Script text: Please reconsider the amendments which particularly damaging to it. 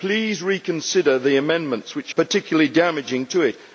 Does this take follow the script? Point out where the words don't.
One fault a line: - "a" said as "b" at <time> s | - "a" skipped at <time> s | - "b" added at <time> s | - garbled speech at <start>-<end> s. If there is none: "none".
none